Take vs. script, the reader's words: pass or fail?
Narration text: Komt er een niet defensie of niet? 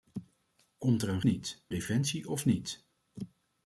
pass